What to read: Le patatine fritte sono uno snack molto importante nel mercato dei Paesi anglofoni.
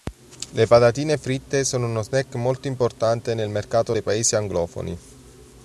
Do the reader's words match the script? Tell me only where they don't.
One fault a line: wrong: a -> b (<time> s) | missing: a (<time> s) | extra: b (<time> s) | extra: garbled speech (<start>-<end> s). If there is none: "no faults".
no faults